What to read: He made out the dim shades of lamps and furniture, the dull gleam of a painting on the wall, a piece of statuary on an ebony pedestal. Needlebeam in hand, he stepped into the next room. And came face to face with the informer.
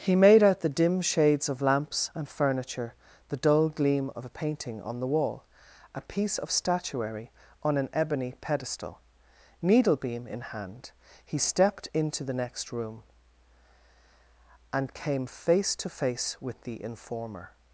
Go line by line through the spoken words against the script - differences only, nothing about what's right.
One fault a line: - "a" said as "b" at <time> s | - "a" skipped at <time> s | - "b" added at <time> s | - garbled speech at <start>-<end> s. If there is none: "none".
none